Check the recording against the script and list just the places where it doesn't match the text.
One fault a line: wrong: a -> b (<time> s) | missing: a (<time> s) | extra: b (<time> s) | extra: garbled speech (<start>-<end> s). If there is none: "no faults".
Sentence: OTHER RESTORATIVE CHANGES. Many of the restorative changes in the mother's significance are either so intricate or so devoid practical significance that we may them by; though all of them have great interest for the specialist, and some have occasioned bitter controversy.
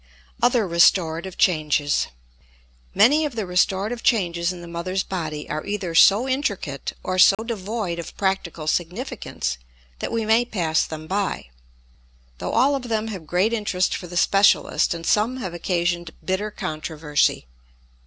wrong: significance -> body (5.0 s)
extra: of (8.0 s)
extra: pass (10.4 s)